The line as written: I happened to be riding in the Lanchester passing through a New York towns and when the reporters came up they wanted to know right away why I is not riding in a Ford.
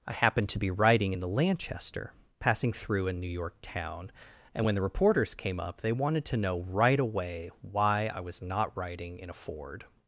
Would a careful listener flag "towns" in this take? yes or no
yes